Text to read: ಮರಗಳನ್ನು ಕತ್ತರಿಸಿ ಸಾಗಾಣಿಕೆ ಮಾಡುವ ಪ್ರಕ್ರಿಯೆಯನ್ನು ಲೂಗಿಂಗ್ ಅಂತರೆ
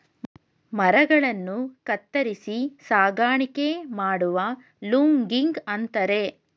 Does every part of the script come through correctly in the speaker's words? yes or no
no